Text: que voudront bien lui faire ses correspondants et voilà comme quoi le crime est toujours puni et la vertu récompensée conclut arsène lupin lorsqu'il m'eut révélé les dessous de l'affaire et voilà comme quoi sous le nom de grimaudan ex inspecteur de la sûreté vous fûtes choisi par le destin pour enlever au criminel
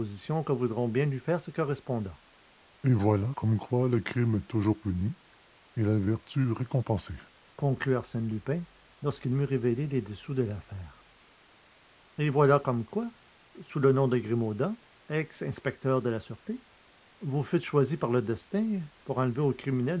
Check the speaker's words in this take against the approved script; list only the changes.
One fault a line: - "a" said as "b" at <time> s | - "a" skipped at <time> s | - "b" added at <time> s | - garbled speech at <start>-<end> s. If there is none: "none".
none